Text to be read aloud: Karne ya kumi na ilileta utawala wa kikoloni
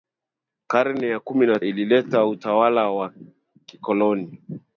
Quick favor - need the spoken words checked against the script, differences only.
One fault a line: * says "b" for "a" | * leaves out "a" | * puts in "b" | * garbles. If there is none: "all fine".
all fine